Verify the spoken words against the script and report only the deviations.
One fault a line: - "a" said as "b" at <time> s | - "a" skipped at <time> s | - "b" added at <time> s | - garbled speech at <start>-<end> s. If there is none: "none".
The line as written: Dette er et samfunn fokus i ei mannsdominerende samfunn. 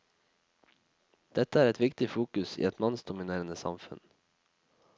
- "samfunn" said as "viktig" at 1.8 s
- "ei" said as "et" at 2.7 s